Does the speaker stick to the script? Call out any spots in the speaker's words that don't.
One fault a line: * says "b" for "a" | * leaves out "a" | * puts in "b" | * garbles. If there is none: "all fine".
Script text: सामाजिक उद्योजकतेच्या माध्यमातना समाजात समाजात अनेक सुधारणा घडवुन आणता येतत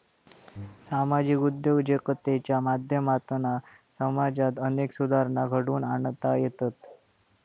* leaves out "समाजात"